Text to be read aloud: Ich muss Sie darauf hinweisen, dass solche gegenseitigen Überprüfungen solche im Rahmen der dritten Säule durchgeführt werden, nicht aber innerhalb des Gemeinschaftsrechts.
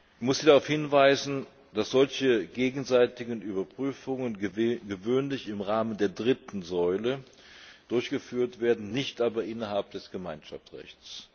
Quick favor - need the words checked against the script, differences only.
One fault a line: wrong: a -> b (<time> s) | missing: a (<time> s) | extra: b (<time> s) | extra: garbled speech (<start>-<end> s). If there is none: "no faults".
wrong: solche -> gewöhnlich (4.4 s)